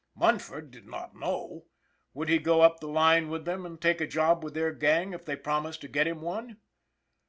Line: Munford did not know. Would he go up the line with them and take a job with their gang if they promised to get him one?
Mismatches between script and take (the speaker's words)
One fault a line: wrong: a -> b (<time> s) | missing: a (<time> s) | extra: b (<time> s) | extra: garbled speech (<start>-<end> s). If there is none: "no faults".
no faults